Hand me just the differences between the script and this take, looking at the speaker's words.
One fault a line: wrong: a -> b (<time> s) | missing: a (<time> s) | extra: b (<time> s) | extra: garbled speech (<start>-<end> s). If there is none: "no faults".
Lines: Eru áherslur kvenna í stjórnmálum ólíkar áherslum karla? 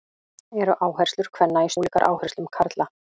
missing: stjórnmálum (1.7 s)